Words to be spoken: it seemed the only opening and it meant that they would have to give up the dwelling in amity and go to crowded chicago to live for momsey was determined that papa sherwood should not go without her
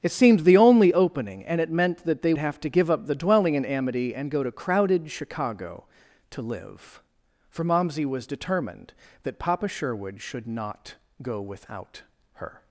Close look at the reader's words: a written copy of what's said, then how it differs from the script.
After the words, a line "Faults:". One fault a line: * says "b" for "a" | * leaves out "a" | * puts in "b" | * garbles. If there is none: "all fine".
it seemed the only opening and it meant that they have to give up the dwelling in amity and go to crowded chicago to live for momsey was determined that papa sherwood should not go without her
Faults:
* leaves out "would"